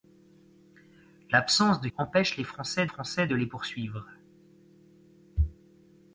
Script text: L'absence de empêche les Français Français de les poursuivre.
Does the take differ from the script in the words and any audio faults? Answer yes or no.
no